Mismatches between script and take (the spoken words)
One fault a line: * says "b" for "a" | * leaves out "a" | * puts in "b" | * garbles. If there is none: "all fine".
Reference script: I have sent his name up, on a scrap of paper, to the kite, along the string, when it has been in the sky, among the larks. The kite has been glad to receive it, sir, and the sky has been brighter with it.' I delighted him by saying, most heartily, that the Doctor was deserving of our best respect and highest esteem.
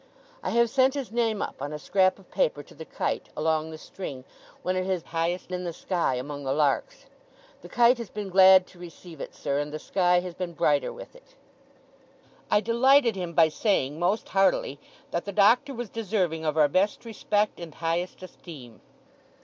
* says "highest" for "been"